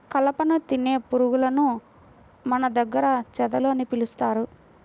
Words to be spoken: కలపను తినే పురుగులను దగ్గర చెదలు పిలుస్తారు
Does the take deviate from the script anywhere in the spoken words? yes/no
yes